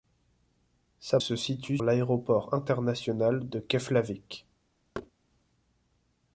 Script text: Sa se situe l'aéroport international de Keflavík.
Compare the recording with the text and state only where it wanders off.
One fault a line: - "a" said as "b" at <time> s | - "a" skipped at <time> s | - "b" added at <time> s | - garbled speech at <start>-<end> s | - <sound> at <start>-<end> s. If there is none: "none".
- thud at 4.9-5.1 s